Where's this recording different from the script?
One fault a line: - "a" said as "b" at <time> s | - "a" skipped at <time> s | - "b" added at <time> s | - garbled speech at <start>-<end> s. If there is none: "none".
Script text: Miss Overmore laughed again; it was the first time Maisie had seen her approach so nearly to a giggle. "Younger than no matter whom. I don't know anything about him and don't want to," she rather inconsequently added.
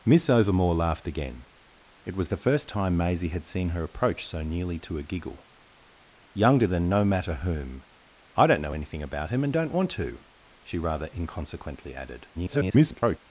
- garbled speech at 12.3-13.2 s